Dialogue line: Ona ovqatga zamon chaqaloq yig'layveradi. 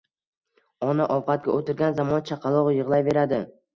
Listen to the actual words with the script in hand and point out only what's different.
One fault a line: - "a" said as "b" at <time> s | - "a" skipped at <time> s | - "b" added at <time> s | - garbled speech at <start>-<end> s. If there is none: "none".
- "o'tirgan" added at 1.6 s